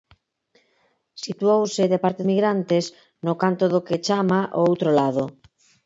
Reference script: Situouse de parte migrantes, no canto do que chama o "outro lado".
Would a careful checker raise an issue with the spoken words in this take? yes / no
no